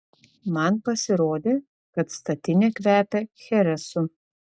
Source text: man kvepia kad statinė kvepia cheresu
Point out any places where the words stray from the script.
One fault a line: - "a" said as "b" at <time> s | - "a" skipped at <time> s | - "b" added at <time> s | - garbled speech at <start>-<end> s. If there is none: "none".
- "kvepia" said as "pasirodė" at 0.9 s